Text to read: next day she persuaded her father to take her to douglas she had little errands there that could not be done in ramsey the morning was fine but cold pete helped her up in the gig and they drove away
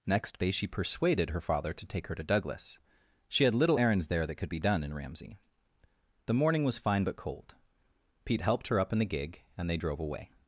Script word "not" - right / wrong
wrong